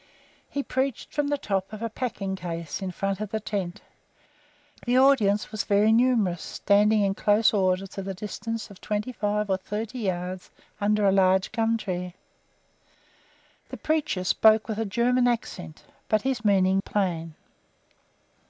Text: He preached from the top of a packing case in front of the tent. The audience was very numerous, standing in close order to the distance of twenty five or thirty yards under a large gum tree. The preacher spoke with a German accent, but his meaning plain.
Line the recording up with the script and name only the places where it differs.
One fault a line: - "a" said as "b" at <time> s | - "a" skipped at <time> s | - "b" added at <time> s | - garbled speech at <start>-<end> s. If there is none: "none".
none